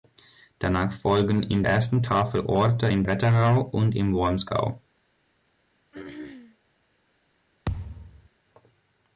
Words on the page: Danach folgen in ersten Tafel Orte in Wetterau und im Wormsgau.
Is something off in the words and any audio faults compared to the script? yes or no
yes